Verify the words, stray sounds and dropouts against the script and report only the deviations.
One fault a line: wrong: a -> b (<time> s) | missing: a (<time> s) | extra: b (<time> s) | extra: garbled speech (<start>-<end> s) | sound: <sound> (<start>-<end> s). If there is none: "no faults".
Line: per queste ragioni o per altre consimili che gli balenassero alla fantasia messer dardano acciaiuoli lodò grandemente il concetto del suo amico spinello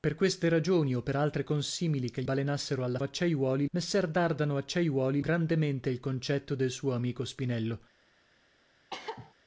missing: gli (2.2 s)
wrong: fantasia -> acciaiuoli (3.0 s)
missing: lodò (5.2 s)
sound: cough (8.9-9.3 s)